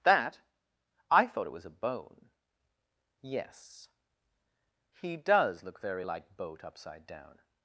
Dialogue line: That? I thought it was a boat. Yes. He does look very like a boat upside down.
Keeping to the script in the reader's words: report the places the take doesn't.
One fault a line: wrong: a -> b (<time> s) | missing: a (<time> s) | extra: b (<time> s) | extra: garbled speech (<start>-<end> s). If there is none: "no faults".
wrong: boat -> bone (1.7 s)
missing: a (6.4 s)